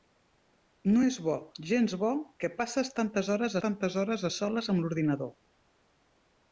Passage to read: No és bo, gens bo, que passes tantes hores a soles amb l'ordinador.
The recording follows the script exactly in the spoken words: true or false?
false